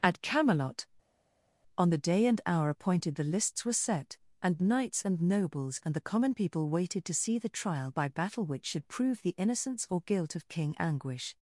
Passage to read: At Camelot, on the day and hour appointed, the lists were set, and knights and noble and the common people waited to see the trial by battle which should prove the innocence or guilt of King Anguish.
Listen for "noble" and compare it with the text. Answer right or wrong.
wrong